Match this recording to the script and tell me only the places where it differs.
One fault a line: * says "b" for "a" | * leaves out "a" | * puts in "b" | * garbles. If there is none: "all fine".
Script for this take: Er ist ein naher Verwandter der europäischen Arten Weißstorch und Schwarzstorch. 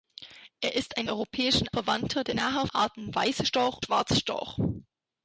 * says "europäischen" for "naher"
* says "naher" for "europäischen"
* leaves out "und"